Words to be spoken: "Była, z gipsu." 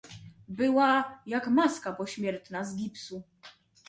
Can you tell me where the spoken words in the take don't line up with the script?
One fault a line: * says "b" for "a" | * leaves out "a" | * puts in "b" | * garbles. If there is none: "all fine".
* puts in "jak maska pośmiertna"